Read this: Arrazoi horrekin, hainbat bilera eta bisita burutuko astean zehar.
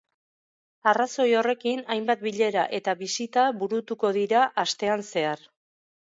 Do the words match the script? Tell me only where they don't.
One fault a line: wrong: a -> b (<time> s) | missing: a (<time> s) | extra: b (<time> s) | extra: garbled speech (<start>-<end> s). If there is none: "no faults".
extra: dira (4.2 s)